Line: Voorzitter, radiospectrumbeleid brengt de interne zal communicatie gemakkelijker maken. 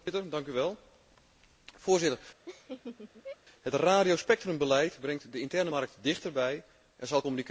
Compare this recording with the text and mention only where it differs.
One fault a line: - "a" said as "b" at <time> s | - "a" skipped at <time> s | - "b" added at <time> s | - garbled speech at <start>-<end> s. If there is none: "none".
- "het" added at 3.6 s
- "markt dichterbij en" added at 5.7 s